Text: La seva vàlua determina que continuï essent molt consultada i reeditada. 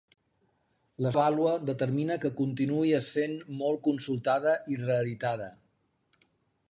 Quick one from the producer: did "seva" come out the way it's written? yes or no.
no